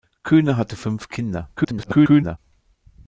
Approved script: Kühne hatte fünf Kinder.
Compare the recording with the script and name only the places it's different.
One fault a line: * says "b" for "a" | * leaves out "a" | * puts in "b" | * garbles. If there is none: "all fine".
* garbles